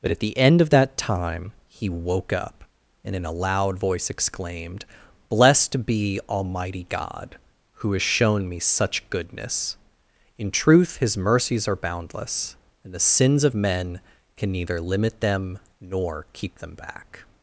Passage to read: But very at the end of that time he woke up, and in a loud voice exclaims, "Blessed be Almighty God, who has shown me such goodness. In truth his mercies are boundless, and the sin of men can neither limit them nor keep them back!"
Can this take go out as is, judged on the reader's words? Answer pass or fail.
fail